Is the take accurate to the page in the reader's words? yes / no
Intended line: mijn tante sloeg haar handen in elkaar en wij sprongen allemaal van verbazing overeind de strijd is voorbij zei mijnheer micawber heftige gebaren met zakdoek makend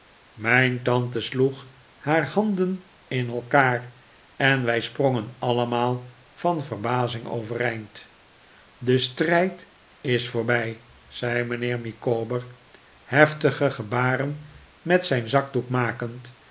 no